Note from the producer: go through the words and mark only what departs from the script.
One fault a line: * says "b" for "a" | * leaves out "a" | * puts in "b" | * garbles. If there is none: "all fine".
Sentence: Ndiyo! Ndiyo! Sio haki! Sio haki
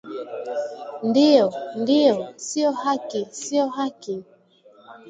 all fine